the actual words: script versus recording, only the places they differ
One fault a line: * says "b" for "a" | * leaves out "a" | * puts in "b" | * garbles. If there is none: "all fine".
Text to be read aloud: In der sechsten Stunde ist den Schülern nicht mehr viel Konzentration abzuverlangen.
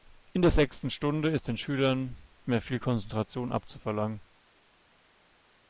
* leaves out "nicht"